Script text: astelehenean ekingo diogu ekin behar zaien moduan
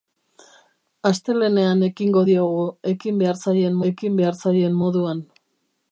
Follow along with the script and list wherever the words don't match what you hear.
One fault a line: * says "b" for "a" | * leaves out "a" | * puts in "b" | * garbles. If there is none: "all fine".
* puts in "ekin behar zaien"